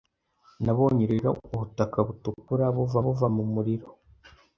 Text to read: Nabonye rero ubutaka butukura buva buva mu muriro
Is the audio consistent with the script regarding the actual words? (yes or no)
yes